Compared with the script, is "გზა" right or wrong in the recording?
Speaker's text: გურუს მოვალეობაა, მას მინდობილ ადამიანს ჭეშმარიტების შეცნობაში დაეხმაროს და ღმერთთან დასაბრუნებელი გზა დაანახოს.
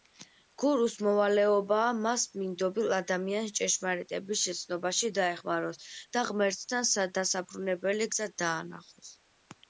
right